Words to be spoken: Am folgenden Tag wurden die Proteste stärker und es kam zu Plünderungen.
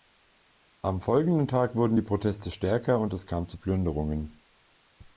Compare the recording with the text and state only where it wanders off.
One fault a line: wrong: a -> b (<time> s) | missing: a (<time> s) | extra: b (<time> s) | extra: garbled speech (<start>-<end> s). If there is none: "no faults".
no faults